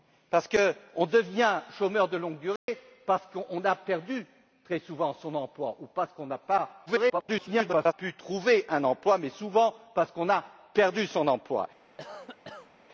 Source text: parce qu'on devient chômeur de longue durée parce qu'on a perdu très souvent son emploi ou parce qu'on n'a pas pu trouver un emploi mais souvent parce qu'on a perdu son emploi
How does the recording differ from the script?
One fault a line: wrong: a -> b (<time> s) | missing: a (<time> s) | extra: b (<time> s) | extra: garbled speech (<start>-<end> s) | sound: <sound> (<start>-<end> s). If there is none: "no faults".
sound: dropout (2.6-2.7 s)
extra: garbled speech (6.9-7.9 s)
sound: cough (12.0-12.7 s)